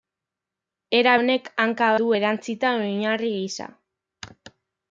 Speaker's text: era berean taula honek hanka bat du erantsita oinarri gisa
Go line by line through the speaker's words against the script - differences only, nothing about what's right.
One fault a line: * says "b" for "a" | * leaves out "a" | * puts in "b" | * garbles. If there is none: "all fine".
* leaves out "berean taula"
* leaves out "bat"